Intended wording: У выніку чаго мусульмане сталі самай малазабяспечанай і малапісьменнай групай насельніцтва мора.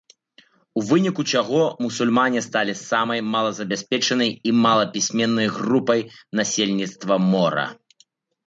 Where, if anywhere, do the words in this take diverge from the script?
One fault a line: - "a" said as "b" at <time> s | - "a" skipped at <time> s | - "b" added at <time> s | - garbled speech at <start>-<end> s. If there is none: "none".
none